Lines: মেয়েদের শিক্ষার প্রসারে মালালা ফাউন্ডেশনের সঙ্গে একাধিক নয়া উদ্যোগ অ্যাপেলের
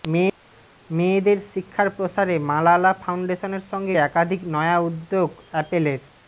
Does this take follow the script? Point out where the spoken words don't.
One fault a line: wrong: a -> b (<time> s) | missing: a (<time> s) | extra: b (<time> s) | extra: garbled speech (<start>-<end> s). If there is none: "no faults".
no faults